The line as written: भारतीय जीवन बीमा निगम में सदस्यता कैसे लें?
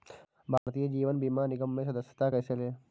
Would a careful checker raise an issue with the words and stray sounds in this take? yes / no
yes